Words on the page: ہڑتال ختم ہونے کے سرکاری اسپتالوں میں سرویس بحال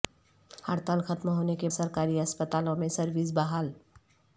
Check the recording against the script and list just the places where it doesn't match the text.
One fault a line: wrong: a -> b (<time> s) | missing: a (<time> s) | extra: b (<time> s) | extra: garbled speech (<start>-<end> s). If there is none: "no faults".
no faults